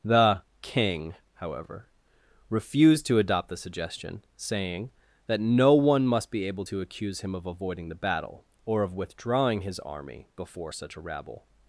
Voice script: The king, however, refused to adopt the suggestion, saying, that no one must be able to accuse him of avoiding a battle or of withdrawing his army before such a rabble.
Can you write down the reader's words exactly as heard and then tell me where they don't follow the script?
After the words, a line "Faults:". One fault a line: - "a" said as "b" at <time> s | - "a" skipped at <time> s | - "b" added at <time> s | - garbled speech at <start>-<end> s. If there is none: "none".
The king, however, refused to adopt the suggestion, saying, that no one must be able to accuse him of avoiding the battle or of withdrawing his army before such a rabble.
Faults:
- "a" said as "the" at 7.9 s